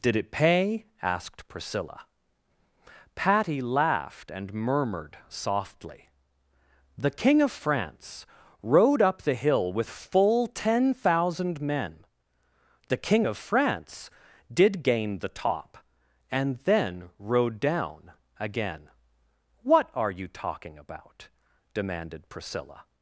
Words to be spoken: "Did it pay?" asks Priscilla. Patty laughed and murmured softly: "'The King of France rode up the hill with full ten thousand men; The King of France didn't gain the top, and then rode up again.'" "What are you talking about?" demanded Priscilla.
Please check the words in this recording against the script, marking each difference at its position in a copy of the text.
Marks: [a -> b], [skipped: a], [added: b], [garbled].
"Did it pay?" [asks -> asked] Priscilla. Patty laughed and murmured softly: "'The King of France rode up the hill with full ten thousand men; The King of France [didn't -> did] gain the top, and then rode [up -> down] again.'" "What are you talking about?" demanded Priscilla.